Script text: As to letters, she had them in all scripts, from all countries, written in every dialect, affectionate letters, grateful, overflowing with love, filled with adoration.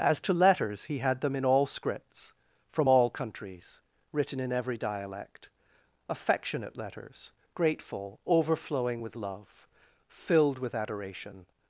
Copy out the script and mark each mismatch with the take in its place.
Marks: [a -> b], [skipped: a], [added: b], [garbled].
As to letters, [she -> he] had them in all scripts, from all countries, written in every dialect, affectionate letters, grateful, overflowing with love, filled with adoration.